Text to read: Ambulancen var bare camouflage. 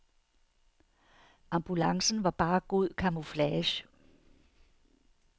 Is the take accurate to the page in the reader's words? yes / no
no